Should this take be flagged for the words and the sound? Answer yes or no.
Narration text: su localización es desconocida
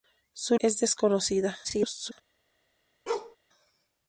yes